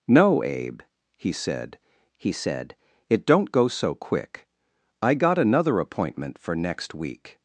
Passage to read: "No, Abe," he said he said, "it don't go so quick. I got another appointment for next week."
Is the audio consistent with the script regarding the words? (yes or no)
yes